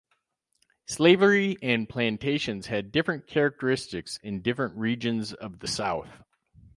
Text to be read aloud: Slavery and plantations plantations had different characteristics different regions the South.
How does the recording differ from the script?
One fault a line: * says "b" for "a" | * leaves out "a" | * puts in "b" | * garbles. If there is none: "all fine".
* leaves out "plantations"
* puts in "in"
* puts in "of"